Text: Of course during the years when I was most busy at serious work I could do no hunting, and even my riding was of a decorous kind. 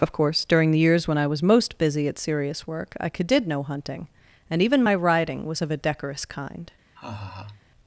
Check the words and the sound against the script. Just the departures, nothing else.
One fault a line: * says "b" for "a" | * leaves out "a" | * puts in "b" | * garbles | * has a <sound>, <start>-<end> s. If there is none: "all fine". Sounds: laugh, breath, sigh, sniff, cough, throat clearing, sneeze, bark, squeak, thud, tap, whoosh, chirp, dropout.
* says "did" for "do"
* has a laugh, 7.0-7.6 s